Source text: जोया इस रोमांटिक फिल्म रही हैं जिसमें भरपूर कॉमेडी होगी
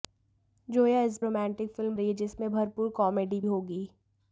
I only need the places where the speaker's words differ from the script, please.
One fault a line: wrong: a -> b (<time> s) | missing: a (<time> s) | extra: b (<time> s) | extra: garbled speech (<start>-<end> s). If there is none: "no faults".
no faults